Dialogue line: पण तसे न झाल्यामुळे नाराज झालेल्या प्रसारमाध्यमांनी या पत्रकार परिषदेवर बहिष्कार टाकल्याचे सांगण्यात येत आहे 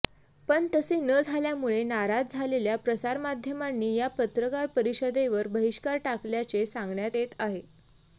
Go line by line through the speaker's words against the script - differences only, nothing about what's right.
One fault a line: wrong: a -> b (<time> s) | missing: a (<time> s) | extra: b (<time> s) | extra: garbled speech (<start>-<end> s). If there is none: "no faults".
no faults